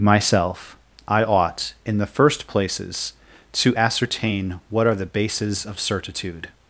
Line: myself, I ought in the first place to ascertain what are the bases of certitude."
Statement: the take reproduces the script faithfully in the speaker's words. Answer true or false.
false